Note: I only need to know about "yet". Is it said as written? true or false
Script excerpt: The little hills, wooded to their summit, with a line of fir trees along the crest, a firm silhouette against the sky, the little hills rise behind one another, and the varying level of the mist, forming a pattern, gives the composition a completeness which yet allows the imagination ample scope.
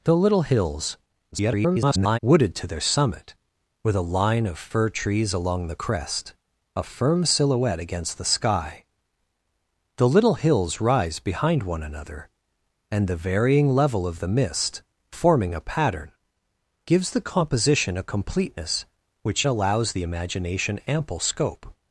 false